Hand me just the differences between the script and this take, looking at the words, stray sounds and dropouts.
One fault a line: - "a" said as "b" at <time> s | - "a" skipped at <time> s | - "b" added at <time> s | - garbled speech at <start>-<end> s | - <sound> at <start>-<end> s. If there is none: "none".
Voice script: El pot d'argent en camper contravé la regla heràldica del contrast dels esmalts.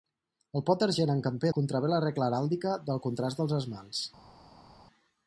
none